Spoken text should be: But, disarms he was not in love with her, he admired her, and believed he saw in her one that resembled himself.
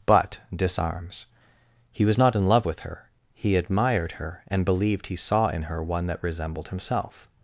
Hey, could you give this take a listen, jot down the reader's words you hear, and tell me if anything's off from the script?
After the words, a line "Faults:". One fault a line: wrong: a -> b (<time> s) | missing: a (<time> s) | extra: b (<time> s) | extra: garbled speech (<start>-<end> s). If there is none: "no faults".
But, disarms he was not in love with her, he admired her, and believed he saw in her one that resembled himself.
Faults:
no faults